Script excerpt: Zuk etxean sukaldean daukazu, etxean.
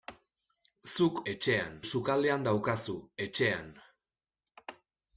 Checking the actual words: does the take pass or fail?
pass